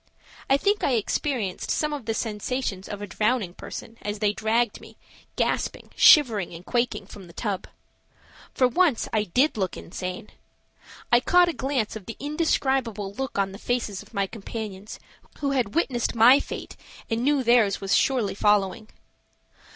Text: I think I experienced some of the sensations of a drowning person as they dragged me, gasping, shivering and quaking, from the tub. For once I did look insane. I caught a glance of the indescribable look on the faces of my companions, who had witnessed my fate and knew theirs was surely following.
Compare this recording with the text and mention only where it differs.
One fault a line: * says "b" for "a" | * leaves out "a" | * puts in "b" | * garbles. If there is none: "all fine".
all fine